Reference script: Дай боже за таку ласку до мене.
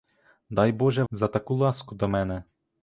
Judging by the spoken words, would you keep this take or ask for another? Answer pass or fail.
pass